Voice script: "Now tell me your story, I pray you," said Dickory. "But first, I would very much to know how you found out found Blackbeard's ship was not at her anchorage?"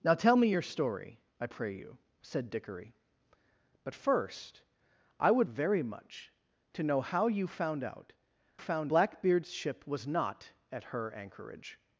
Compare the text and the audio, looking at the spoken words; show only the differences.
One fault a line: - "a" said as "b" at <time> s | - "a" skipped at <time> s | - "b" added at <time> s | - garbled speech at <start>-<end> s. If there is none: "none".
none